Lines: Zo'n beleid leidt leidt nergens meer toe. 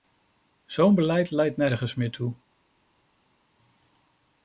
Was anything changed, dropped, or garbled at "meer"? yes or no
no